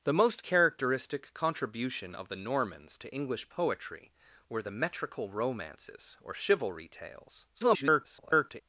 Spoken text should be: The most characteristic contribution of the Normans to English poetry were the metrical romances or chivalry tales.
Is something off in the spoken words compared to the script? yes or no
yes